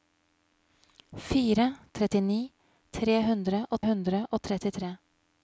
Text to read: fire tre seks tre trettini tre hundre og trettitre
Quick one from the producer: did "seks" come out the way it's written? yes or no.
no